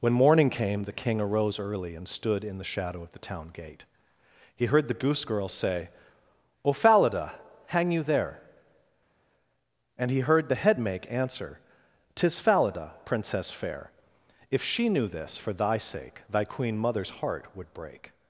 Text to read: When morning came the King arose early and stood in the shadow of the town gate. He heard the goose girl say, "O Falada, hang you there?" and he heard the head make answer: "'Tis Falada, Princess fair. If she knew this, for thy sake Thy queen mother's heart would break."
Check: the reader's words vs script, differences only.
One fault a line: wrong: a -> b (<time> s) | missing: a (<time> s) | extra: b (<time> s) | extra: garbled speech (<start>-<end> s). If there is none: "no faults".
no faults